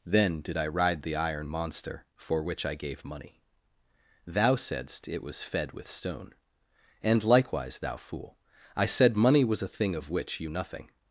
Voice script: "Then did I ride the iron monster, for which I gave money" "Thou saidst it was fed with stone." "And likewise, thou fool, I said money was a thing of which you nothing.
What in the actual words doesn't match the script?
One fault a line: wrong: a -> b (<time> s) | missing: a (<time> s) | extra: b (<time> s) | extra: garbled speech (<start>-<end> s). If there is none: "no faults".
no faults